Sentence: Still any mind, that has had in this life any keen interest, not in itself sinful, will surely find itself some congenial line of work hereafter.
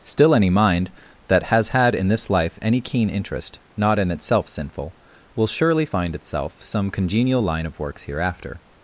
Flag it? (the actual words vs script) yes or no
yes